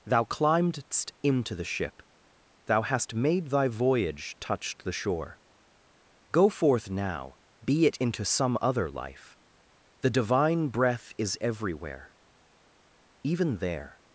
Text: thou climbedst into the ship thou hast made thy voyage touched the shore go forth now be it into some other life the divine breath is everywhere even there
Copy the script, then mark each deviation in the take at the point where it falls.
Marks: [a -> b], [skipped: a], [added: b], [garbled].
thou climbedst into the ship thou hast made thy voyage touched the shore go forth now be it into some other life the divine breath is everywhere even there